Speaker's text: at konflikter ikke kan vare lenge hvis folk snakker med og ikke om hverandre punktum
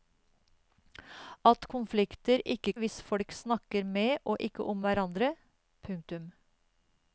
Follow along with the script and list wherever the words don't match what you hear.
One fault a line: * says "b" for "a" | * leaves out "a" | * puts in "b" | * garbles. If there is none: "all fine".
* leaves out "kan vare lenge"